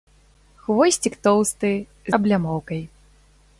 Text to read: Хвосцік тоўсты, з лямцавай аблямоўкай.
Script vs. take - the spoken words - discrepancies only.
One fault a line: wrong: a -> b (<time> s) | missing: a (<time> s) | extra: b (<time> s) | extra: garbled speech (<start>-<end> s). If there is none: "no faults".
missing: з лямцавай (1.7 s)